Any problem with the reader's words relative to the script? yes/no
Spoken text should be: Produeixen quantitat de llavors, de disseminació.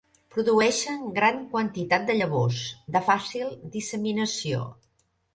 yes